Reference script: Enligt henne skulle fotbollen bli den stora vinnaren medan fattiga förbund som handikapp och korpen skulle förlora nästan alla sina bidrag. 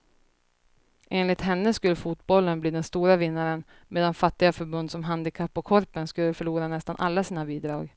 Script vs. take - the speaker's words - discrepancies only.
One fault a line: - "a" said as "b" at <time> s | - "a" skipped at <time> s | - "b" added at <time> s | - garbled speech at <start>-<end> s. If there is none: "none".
none